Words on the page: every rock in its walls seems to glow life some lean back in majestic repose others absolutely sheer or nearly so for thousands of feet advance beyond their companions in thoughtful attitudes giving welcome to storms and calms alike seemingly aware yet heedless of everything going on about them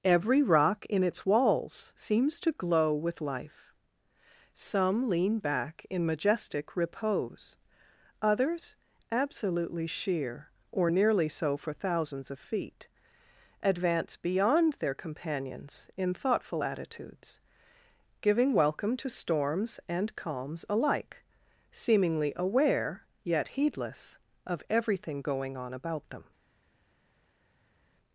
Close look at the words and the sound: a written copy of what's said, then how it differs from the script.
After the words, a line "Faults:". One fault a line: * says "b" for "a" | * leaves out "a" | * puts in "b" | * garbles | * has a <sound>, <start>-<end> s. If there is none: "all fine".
every rock in its walls seems to glow with life some lean back in majestic repose others absolutely sheer or nearly so for thousands of feet advance beyond their companions in thoughtful attitudes giving welcome to storms and calms alike seemingly aware yet heedless of everything going on about them
Faults:
* puts in "with"